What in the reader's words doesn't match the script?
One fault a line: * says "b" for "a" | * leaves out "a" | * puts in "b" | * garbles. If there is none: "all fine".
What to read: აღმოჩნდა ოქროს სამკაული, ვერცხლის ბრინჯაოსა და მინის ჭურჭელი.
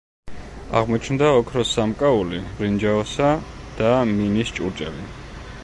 * leaves out "ვერცხლის"